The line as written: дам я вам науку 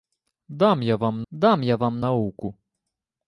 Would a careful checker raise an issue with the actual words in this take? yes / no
yes